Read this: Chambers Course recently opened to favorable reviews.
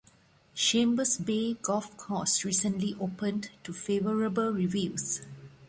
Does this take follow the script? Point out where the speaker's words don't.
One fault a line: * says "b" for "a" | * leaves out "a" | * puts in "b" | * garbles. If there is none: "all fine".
* puts in "Bay golf"